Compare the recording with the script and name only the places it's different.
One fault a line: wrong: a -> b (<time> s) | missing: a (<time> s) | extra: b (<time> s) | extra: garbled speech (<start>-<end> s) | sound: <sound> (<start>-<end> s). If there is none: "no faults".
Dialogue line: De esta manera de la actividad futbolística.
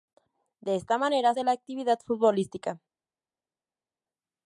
no faults